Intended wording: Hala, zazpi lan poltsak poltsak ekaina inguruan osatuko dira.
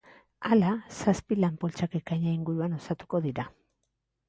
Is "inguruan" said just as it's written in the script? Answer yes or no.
yes